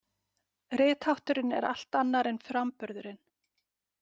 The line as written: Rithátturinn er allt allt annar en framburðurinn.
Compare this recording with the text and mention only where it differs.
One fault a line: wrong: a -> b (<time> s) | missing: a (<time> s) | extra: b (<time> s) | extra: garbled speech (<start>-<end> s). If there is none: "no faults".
missing: allt (2.0 s)